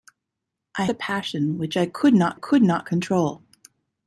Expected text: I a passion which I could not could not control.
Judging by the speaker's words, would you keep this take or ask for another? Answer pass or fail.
pass